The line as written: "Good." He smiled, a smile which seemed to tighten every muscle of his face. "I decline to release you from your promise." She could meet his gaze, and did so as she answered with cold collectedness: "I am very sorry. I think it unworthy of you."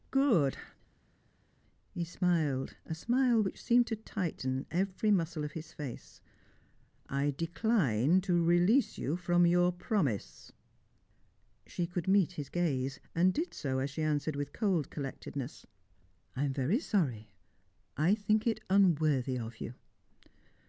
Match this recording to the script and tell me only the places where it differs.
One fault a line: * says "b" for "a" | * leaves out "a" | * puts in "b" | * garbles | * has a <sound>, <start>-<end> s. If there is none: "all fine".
all fine